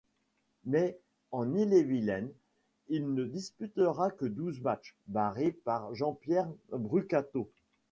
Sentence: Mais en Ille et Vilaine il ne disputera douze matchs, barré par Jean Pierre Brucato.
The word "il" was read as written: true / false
true